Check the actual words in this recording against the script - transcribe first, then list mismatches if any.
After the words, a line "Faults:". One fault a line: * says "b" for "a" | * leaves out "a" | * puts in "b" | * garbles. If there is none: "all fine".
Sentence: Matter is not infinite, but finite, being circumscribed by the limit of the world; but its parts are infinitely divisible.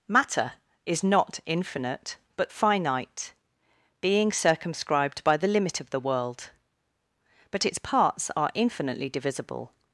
Matter is not infinite, but finite, being circumscribed by the limit of the world; but its parts are infinitely divisible.
Faults:
all fine